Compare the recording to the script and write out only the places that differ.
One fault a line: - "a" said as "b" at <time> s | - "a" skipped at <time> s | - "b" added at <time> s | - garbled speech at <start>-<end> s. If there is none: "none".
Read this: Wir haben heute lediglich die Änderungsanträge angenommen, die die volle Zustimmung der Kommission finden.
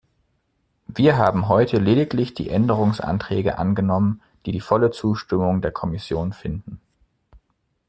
none